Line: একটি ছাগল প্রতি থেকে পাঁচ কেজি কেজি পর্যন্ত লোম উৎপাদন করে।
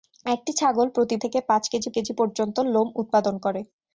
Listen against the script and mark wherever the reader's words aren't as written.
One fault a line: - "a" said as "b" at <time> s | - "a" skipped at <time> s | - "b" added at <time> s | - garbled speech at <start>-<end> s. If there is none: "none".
none